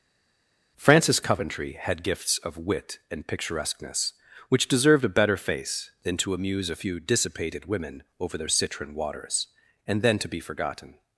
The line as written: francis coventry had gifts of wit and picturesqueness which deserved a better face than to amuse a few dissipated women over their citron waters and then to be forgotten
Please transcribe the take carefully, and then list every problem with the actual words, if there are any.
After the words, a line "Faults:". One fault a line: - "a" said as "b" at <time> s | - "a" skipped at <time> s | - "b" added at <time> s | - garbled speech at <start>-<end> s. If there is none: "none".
francis coventry had gifts of wit and picturesqueness which deserved a better face than to amuse a few dissipated women over their citron waters and then to be forgotten
Faults:
none